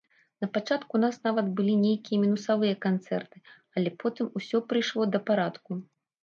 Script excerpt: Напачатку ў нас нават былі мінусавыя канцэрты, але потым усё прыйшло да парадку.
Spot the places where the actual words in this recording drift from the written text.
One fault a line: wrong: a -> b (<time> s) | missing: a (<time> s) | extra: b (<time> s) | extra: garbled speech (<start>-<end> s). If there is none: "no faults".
extra: нейкія (1.8 s)